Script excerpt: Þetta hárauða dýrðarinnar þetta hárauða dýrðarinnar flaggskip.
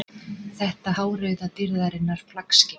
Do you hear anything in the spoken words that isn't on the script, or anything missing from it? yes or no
yes